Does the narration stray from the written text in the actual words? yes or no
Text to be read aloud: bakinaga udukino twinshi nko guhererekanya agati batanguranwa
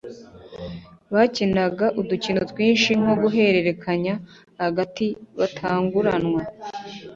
no